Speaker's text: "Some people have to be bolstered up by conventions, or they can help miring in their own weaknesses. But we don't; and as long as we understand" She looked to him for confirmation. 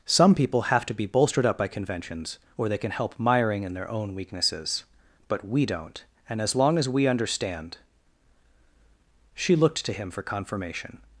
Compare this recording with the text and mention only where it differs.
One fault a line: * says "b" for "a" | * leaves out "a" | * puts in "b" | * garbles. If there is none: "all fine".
all fine